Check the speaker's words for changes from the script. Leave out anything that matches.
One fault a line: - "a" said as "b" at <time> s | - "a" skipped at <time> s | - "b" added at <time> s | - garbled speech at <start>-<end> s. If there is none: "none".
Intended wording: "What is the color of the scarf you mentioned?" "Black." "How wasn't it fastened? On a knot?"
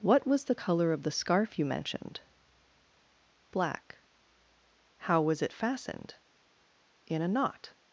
- "is" said as "was" at 0.2 s
- "wasn't" said as "was" at 5.2 s
- "On" said as "In" at 7.1 s